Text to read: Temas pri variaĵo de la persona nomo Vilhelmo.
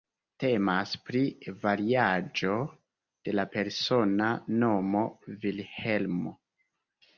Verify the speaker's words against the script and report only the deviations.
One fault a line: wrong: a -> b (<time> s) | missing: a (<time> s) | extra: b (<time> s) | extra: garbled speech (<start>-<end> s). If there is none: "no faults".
no faults